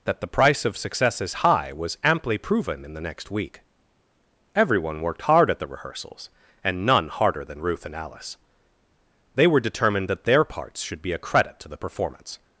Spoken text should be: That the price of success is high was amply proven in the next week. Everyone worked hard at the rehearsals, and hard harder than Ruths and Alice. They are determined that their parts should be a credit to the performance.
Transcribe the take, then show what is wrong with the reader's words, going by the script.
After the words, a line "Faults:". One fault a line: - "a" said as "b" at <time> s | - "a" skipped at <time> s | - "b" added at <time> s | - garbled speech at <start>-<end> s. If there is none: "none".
That the price of success is high was amply proven in the next week. Everyone worked hard at the rehearsals, and none harder than Ruth and Alice. They were determined that their parts should be a credit to the performance.
Faults:
- "hard" said as "none" at 6.8 s
- "Ruths" said as "Ruth" at 7.6 s
- "are" said as "were" at 9.5 s